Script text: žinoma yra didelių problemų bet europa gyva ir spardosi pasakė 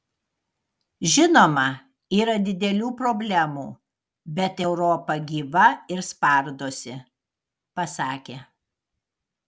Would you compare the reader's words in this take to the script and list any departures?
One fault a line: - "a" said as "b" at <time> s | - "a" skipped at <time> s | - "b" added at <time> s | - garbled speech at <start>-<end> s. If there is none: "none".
none